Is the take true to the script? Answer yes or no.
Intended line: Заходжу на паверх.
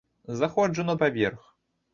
yes